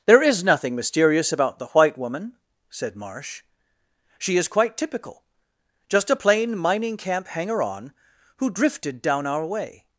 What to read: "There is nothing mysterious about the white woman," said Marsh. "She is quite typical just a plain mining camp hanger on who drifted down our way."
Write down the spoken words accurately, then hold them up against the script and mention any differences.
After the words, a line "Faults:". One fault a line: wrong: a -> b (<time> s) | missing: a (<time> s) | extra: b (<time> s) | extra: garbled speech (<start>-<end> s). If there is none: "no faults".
"There is nothing mysterious about the white woman," said Marsh. "She is quite typical just a plain mining camp hanger on who drifted down our way."
Faults:
no faults